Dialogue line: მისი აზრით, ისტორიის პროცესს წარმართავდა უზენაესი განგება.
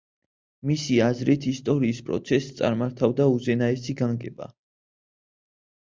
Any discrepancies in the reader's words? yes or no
no